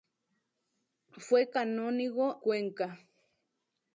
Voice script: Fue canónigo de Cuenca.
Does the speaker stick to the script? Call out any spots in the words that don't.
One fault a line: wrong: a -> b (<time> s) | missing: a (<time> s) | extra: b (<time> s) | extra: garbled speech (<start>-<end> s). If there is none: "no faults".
missing: de (2.4 s)